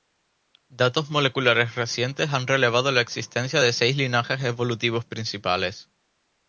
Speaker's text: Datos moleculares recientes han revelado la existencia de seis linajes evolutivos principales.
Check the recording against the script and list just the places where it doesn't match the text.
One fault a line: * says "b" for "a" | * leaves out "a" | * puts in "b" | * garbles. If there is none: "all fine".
all fine